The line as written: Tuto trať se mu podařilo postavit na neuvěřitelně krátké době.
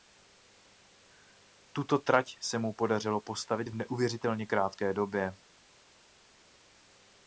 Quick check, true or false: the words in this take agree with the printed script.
false